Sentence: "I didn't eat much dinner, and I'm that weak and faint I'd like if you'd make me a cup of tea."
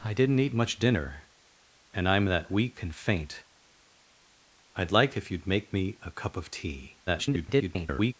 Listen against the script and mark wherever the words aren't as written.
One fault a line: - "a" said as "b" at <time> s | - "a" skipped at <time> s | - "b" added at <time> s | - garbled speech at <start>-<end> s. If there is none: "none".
- garbled speech at 7.1-8.1 s